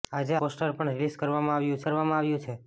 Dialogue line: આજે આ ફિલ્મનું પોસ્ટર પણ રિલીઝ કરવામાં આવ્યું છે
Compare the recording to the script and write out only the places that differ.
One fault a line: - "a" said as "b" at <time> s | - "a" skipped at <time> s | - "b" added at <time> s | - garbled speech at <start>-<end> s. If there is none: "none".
- "આ ફિલ્મનું" skipped at 0.3 s
- "કરવામાં આવ્યું" added at 1.8 s